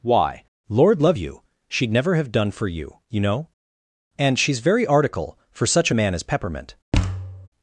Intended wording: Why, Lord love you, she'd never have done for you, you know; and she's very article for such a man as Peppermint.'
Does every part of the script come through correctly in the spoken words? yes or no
yes